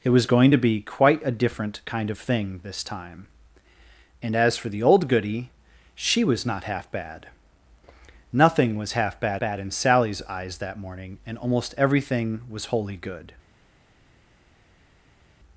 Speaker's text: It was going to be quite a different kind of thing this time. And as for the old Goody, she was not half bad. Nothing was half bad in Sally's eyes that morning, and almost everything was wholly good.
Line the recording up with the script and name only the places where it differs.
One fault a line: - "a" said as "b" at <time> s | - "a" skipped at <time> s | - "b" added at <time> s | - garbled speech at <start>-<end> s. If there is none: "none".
- "bad" added at 9.4 s